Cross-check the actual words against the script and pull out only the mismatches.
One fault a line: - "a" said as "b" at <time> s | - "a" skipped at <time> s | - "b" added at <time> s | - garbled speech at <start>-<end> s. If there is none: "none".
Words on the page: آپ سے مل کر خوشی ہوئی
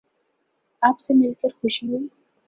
none